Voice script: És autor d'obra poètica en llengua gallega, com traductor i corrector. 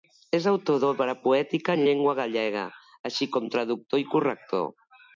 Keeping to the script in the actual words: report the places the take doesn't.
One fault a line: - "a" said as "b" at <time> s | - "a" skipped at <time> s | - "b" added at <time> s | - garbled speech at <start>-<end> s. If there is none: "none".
- "així" added at 3.1 s